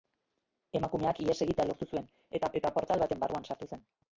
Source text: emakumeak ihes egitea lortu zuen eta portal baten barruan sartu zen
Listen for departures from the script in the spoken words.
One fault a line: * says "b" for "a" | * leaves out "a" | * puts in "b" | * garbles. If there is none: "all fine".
* puts in "eta"